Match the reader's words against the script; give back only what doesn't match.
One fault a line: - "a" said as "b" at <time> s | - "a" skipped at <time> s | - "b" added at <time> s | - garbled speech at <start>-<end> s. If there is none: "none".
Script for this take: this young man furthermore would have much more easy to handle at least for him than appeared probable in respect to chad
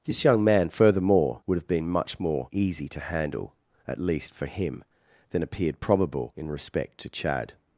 - "been" added at 1.7 s